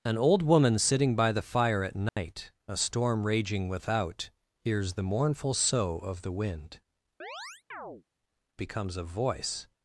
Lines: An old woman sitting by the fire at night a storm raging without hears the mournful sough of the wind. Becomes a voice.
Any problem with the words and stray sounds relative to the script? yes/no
yes